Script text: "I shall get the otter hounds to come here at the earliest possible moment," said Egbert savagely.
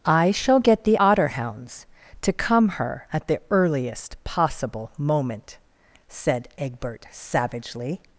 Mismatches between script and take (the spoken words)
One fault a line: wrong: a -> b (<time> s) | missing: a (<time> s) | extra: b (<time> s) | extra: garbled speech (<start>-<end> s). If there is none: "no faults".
wrong: here -> her (2.7 s)